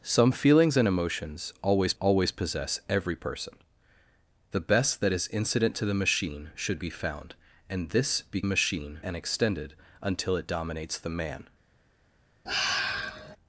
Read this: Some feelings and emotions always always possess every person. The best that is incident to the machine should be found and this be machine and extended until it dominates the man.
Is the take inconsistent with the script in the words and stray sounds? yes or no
yes